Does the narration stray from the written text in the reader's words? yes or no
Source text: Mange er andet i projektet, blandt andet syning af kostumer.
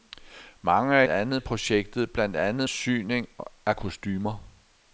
no